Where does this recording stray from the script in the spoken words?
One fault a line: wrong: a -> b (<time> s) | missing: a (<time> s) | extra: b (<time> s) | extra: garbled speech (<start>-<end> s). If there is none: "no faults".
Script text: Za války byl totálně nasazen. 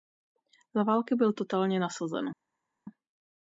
no faults